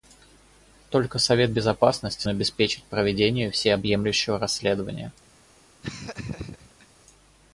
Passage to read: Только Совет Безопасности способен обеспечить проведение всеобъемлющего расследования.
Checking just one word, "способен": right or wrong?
wrong